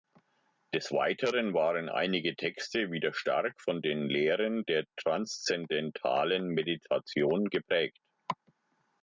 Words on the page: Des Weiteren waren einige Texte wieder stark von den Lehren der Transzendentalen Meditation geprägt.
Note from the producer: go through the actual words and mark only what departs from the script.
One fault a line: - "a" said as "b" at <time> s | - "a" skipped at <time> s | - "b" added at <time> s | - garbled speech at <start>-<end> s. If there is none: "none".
none